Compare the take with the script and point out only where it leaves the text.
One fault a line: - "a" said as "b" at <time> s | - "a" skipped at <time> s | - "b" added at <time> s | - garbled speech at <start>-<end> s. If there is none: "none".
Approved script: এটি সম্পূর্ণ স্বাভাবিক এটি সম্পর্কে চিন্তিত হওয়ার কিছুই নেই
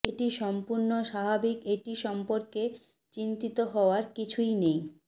none